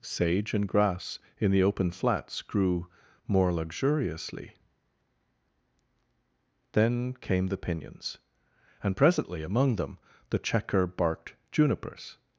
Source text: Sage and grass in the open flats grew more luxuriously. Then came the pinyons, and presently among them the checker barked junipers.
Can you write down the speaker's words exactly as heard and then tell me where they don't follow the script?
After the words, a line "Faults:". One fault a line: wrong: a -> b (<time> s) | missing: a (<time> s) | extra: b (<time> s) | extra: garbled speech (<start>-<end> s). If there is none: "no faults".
Sage and grass in the open flats grew more luxuriously. Then came the pinyons, and presently among them the checker barked junipers.
Faults:
no faults